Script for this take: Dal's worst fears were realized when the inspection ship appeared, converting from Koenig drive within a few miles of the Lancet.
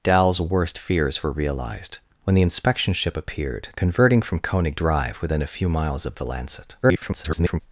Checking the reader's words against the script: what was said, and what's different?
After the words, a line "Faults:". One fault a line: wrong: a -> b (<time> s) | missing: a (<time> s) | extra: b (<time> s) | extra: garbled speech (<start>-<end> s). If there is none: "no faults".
Dal's worst fears were realized when the inspection ship appeared, converting from Koenig drive within a few miles of the Lancet. [garbled]
Faults:
extra: garbled speech (6.8-7.6 s)